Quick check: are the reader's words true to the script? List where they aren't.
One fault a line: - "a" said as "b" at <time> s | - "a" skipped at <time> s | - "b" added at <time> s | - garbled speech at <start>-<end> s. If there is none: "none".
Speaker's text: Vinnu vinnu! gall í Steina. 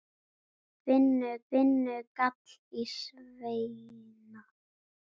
none